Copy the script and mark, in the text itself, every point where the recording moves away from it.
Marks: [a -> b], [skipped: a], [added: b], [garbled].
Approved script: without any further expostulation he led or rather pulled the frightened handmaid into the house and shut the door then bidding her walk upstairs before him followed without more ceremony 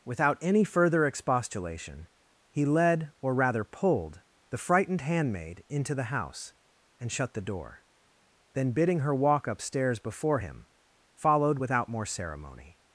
without any further expostulation he led or rather pulled the frightened handmaid into the house and shut the door then bidding her walk upstairs before him followed without more ceremony